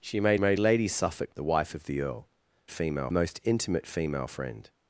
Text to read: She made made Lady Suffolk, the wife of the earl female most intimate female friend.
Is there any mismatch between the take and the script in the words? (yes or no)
no